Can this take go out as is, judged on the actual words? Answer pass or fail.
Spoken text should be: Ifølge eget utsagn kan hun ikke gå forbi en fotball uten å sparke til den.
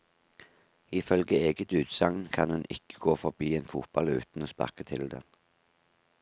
pass